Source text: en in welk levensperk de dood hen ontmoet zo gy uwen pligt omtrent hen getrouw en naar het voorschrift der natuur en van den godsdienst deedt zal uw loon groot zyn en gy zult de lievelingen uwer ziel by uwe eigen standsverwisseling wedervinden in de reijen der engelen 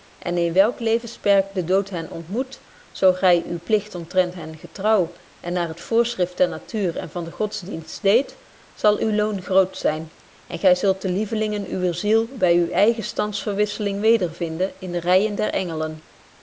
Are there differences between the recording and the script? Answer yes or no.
no